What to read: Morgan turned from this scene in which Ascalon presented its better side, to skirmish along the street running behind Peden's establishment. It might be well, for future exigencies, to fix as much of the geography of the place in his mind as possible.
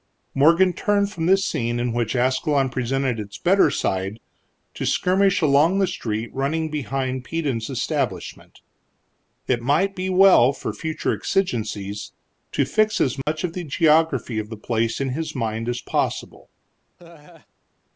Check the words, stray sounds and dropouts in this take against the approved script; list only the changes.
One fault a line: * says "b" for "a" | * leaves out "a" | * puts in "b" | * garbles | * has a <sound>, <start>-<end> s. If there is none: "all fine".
* has a dropout, 13.2-13.3 s
* has a laugh, 17.0-17.5 s